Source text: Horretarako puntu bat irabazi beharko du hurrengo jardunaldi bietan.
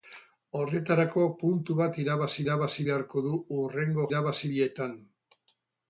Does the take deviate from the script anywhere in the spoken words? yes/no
yes